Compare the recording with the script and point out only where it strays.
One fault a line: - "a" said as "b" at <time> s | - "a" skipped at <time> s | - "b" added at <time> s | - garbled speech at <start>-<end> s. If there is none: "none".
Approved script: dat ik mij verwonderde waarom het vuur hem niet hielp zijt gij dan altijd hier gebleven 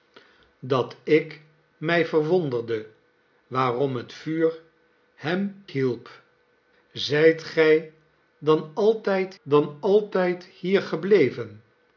- "niet" skipped at 5.6 s
- "dan altijd" added at 9.4 s